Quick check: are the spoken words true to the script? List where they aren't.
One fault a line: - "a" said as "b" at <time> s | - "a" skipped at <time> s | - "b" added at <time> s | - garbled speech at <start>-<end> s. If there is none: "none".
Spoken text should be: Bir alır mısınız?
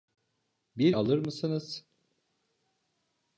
none